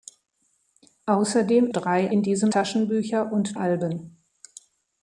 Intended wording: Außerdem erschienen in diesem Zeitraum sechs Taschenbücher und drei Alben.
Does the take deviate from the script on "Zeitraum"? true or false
true